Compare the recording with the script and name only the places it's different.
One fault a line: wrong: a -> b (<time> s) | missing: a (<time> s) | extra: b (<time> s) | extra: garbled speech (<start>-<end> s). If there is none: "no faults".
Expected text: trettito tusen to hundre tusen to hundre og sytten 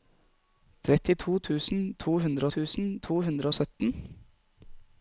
no faults